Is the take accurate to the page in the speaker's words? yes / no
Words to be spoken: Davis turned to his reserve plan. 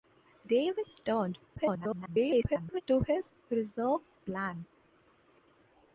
no